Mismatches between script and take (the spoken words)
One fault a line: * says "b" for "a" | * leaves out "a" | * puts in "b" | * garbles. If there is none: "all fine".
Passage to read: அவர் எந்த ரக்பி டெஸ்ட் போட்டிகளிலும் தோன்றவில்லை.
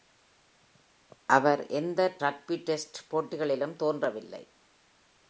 all fine